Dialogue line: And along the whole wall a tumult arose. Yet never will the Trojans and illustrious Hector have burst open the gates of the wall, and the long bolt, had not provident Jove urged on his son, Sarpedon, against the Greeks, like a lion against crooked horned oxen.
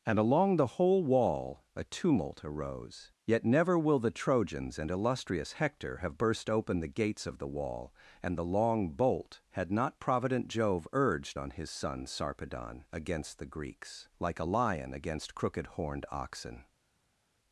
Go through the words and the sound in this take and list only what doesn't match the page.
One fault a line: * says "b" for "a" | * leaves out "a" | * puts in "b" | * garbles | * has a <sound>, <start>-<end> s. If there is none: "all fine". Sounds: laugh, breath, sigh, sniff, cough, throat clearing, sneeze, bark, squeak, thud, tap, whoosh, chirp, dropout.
all fine